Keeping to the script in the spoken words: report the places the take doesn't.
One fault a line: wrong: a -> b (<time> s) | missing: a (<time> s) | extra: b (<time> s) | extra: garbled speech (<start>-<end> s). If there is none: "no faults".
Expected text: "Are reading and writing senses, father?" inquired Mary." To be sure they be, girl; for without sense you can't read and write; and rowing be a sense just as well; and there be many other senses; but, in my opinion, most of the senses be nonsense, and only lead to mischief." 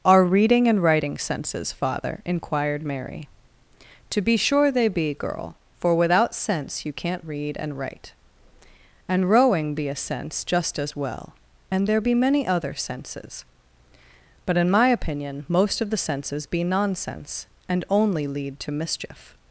no faults